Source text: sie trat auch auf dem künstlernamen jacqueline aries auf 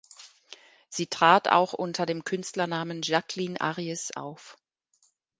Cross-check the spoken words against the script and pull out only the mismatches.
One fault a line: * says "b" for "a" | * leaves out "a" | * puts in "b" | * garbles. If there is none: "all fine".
* says "unter" for "auf"